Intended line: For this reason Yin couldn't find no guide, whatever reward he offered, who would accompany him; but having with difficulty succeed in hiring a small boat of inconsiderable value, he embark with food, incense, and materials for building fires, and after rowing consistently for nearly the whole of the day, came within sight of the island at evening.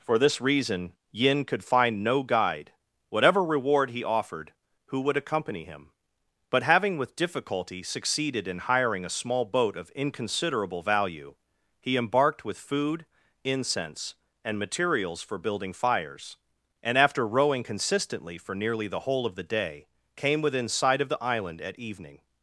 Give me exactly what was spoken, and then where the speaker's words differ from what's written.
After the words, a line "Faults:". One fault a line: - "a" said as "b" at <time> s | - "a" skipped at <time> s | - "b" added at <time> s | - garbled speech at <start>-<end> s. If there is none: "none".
For this reason Yin could find no guide, whatever reward he offered, who would accompany him; but having with difficulty succeeded in hiring a small boat of inconsiderable value, he embarked with food, incense, and materials for building fires, and after rowing consistently for nearly the whole of the day, came within sight of the island at evening.
Faults:
- "couldn't" said as "could" at 1.4 s
- "succeed" said as "succeeded" at 7.8 s
- "embark" said as "embarked" at 12.0 s